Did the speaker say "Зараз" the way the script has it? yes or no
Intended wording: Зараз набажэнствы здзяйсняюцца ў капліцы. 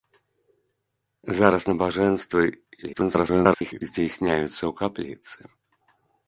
yes